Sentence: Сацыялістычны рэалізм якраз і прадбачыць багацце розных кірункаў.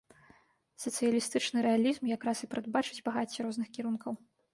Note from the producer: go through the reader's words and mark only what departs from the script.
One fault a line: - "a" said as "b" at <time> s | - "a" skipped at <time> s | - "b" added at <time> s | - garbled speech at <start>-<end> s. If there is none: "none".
none